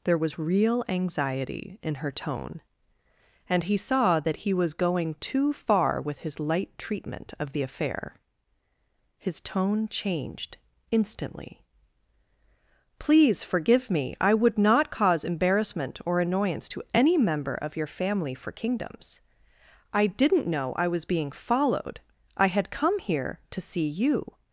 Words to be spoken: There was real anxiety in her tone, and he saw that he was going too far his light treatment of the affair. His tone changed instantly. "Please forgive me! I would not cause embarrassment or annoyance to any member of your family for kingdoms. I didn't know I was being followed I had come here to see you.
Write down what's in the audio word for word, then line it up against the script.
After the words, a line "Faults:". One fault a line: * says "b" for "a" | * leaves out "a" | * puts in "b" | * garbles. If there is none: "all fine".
There was real anxiety in her tone, and he saw that he was going too far with his light treatment of the affair. His tone changed instantly. "Please forgive me! I would not cause embarrassment or annoyance to any member of your family for kingdoms. I didn't know I was being followed I had come here to see you.
Faults:
* puts in "with"